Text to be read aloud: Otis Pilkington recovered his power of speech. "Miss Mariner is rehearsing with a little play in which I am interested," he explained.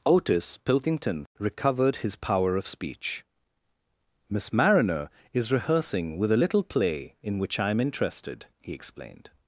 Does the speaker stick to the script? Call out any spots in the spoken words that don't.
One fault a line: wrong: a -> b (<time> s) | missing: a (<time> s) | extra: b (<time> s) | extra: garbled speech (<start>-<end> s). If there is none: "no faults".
no faults